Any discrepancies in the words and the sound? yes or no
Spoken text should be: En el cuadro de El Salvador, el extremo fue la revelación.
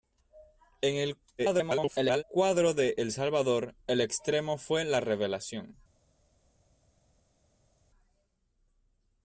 yes